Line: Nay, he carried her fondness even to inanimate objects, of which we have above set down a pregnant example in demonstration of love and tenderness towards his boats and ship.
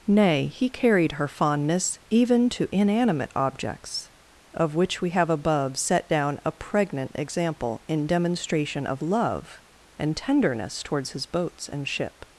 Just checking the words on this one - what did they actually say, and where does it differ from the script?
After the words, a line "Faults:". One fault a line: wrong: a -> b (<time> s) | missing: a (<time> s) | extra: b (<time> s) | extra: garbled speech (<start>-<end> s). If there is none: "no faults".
Nay, he carried her fondness even to inanimate objects, of which we have above set down a pregnant example in demonstration of love and tenderness towards his boats and ship.
Faults:
no faults